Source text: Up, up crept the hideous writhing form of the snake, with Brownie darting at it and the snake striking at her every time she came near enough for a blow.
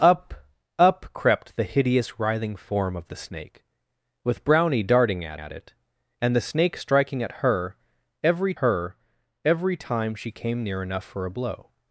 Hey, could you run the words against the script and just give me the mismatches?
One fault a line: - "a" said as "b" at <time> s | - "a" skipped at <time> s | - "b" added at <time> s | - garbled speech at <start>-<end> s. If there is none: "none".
- "at" added at 5.3 s
- "her every" added at 8.5 s